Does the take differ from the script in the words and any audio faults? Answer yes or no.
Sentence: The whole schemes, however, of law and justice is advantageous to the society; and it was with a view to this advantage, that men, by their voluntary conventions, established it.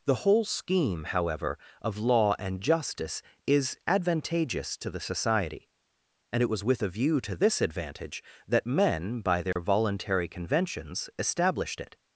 yes